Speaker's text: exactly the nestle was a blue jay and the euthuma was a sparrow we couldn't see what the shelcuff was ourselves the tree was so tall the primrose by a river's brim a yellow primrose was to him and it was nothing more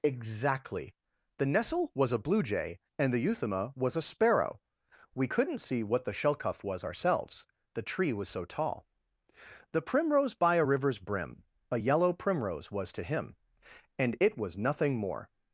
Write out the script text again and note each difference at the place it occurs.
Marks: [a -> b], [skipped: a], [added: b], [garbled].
exactly the nestle was a blue jay and the euthuma was a sparrow we couldn't see what the shelcuff was ourselves the tree was so tall the primrose by a river's brim a yellow primrose was to him and it was nothing more